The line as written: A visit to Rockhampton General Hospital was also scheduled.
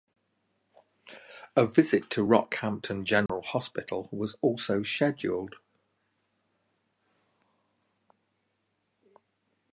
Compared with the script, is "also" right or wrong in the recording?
right